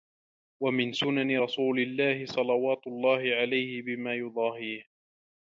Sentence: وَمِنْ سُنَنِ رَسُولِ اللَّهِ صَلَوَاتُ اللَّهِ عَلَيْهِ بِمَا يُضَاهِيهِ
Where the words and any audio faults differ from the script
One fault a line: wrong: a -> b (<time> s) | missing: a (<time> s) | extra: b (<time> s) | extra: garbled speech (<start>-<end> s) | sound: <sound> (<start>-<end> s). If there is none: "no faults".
no faults